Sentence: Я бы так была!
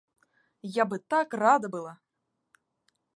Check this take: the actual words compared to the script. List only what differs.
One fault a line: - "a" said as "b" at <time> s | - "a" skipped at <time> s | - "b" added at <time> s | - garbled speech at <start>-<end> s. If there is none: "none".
- "рада" added at 1.3 s